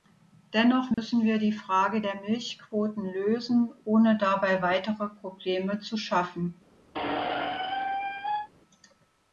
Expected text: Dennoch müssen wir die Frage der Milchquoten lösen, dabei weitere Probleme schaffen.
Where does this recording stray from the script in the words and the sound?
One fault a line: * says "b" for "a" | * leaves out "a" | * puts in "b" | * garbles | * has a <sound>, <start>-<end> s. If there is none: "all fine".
* has a dropout, 0.9-1.0 s
* puts in "ohne"
* puts in "zu"
* has a squeak, 6.9-8.5 s